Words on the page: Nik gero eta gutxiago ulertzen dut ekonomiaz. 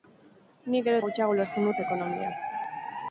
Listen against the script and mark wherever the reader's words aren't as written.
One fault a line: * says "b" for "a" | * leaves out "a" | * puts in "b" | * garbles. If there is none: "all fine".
* leaves out "eta"